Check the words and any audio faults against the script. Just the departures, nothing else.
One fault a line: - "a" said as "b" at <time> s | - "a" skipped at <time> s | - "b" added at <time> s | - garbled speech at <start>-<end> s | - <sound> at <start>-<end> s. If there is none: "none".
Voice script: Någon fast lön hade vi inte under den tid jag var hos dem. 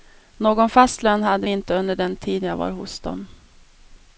none